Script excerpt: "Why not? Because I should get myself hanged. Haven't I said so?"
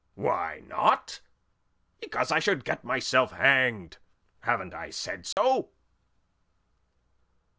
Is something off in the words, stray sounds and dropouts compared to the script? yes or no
yes